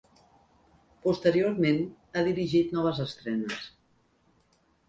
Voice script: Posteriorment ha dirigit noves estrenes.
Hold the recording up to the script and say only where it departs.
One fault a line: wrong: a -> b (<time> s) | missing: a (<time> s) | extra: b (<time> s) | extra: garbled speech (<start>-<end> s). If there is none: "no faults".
no faults